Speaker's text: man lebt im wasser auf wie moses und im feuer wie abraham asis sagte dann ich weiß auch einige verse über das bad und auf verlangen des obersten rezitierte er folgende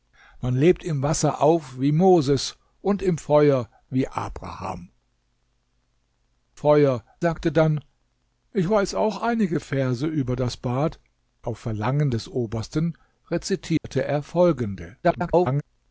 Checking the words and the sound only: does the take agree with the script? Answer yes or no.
no